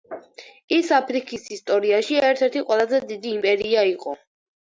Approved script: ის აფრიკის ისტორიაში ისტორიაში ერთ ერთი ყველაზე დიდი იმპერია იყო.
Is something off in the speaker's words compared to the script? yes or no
yes